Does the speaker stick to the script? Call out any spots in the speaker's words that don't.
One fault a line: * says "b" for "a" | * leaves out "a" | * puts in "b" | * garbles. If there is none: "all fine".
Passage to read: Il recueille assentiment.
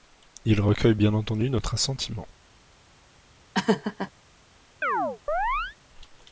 * puts in "bien entendu notre"